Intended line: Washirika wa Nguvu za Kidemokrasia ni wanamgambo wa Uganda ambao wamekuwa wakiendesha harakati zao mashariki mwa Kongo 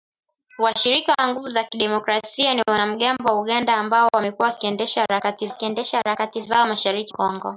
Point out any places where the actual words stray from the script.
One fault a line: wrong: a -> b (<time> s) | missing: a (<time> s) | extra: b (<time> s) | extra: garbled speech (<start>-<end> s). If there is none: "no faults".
extra: wakiendesha harakati (5.5 s)
missing: mwa (7.1 s)